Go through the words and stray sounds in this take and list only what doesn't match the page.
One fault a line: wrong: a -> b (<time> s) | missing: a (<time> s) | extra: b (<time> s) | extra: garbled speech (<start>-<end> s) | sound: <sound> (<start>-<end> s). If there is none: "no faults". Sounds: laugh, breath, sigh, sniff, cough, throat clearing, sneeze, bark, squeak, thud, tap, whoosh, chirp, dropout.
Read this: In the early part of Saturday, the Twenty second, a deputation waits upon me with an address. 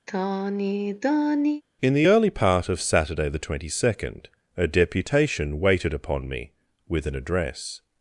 sound: sigh (0.1-1.6 s)
wrong: waits -> waited (5.6 s)